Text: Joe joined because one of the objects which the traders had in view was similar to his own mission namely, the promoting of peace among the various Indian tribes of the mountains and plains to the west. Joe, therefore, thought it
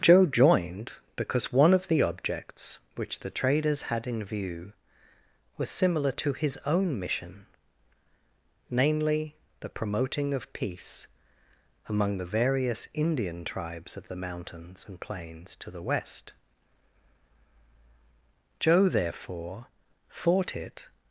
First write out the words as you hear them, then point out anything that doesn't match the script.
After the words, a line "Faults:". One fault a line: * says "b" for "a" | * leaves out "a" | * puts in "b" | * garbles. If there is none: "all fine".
Joe joined because one of the objects which the traders had in view was similar to his own mission namely, the promoting of peace among the various Indian tribes of the mountains and plains to the west. Joe, therefore, thought it
Faults:
all fine